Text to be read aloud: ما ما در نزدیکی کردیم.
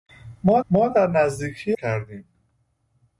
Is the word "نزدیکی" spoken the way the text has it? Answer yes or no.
yes